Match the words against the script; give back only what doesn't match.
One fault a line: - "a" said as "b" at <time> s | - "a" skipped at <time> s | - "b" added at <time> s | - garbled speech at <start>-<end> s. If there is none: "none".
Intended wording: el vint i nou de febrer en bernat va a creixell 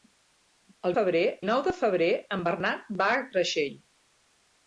- "vint" said as "febrer" at 0.9 s